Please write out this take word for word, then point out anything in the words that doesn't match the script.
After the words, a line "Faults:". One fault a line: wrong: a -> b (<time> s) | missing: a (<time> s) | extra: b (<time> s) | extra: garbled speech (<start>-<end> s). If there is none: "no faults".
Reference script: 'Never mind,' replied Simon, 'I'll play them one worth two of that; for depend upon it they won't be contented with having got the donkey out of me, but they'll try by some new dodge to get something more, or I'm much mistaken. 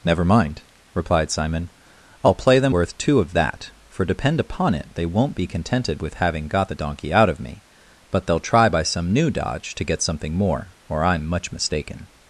'Never mind,' replied Simon, 'I'll play them worth two of that; for depend upon it they won't be contented with having got the donkey out of me, but they'll try by some new dodge to get something more, or I'm much mistaken.
Faults:
missing: one (2.8 s)